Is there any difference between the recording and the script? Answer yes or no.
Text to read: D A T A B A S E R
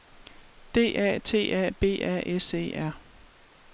no